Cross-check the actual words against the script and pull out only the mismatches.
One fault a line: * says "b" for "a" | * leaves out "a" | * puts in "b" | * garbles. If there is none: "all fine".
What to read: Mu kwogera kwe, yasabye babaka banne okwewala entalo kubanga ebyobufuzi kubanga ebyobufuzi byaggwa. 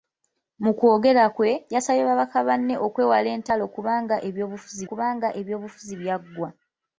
all fine